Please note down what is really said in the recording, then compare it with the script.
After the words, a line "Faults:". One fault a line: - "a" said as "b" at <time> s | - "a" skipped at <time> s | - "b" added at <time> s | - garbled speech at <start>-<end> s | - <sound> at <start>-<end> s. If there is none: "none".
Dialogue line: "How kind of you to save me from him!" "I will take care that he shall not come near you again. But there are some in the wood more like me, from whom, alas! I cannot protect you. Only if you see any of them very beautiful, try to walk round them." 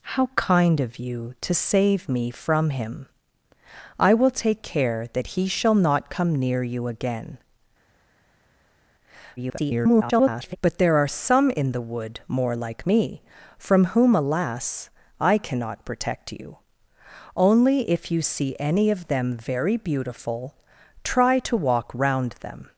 "How kind of you to save me from him!" "I will take care that he shall not come near you again. [garbled] But there are some in the wood more like me, from whom, alas! I cannot protect you. Only if you see any of them very beautiful, try to walk round them."
Faults:
- garbled speech at 9.4-10.6 s